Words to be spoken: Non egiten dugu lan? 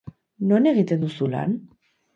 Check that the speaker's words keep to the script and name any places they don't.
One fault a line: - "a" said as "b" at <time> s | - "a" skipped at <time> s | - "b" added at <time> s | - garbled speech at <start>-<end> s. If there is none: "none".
- "dugu" said as "duzu" at 1.0 s